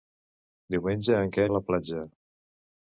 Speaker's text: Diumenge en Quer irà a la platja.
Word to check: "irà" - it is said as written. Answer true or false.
false